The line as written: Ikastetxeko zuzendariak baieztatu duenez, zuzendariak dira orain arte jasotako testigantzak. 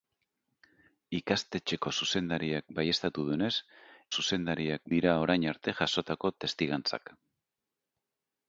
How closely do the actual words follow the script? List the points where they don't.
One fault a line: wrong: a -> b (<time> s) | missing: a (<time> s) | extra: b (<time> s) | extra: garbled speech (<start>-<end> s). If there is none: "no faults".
no faults